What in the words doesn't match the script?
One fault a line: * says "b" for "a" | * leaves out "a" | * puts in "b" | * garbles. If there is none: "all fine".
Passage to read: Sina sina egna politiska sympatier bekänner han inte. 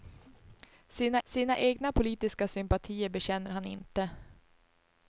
all fine